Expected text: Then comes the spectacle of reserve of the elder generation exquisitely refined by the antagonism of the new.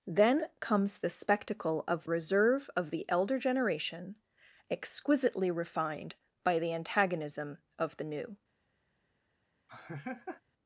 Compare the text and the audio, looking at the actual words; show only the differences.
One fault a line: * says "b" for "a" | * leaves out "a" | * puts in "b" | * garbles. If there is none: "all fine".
all fine